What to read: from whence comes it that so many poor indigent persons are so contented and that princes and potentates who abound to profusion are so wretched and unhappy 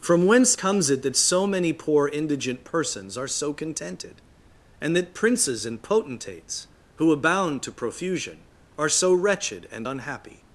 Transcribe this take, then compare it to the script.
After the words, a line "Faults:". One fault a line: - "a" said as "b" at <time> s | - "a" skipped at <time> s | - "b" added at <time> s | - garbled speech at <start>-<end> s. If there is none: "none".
from whence comes it that so many poor indigent persons are so contented and that princes and potentates who abound to profusion are so wretched and unhappy
Faults:
none